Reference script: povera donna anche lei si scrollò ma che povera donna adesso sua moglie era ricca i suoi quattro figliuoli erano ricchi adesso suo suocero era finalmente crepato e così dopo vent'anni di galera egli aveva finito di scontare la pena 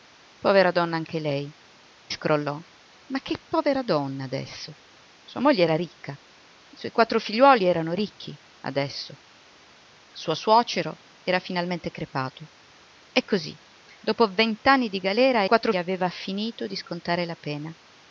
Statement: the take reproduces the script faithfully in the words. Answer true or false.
false